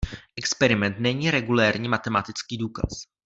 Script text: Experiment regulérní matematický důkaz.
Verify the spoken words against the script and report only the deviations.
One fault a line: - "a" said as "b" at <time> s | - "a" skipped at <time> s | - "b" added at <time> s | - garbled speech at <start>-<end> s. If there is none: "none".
- "není" added at 1.0 s